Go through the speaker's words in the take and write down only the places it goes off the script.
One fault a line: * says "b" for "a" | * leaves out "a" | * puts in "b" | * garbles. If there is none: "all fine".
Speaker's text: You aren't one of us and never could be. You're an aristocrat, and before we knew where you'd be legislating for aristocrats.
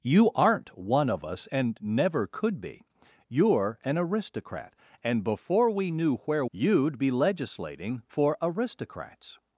all fine